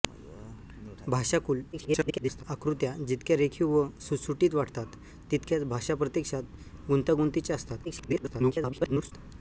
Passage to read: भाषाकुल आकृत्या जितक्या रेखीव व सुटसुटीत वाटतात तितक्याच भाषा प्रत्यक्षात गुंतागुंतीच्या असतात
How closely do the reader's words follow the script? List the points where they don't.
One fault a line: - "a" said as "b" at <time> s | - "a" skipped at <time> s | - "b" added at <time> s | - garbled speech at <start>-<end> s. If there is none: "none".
- garbled speech at 1.7-2.4 s
- garbled speech at 7.8-9.1 s